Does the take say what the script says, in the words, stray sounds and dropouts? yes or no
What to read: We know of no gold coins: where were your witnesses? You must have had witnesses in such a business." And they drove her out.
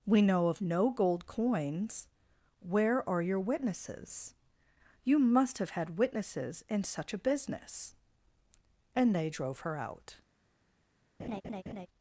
no